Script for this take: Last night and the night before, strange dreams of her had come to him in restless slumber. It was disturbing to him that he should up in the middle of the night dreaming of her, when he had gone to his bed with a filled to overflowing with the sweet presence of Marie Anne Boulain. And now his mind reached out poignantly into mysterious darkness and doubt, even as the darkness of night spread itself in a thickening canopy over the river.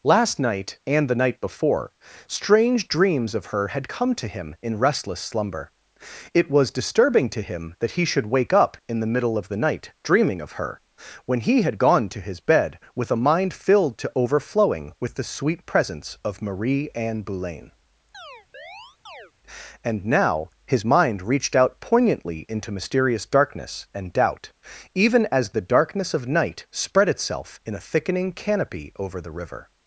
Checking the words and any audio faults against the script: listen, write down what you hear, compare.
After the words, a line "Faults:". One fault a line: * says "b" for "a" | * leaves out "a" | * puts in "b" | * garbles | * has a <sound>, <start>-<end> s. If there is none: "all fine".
Last night and the night before, strange dreams of her had come to him in restless slumber. It was disturbing to him that he should wake up in the middle of the night dreaming of her, when he had gone to his bed with a mind filled to overflowing with the sweet presence of Marie Anne Boulain. And now his mind reached out poignantly into mysterious darkness and doubt, even as the darkness of night spread itself in a thickening canopy over the river.
Faults:
* puts in "wake"
* puts in "mind"
* has a chirp, 18.1-19.3 s